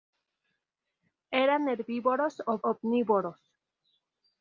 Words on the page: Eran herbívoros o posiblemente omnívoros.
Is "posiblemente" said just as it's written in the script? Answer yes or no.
no